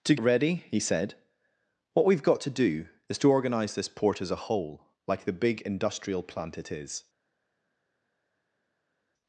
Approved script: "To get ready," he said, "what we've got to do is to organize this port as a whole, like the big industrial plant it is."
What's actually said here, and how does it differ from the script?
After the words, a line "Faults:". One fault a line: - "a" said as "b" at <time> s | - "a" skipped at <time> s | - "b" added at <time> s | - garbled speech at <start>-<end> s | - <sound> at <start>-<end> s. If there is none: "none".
"To ready," he said, "what we've got to do is to organize this port as a whole, like the big industrial plant it is."
Faults:
- "get" skipped at 0.1 s